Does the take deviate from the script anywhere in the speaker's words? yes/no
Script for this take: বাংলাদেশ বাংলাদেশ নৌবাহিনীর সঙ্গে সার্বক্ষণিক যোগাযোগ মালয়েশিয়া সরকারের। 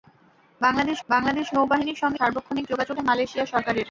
no